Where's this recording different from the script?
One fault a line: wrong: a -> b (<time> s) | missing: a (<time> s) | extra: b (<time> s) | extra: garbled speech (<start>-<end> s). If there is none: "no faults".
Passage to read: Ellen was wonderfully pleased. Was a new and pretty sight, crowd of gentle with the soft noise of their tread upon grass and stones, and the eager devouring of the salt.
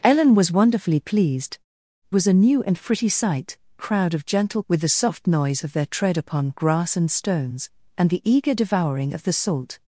no faults